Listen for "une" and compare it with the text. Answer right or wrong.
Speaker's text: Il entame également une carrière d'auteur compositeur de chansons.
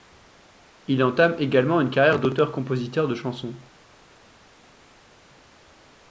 right